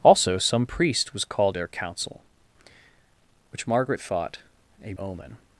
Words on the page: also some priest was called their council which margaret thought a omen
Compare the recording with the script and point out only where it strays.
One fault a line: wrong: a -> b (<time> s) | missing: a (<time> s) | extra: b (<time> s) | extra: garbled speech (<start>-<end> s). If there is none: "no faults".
no faults